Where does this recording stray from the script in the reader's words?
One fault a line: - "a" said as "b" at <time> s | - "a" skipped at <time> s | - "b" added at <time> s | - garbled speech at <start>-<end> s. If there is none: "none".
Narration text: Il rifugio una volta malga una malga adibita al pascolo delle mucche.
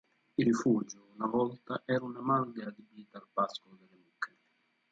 - "malga" said as "era" at 1.9 s